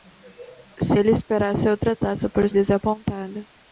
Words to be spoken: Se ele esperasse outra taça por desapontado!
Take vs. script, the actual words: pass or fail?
pass